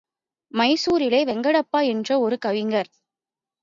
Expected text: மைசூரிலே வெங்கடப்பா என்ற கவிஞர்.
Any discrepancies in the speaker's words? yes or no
yes